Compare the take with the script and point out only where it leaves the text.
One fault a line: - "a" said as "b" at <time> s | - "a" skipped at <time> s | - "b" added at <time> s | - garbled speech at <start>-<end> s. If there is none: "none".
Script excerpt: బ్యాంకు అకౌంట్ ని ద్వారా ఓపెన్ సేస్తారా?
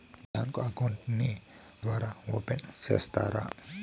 none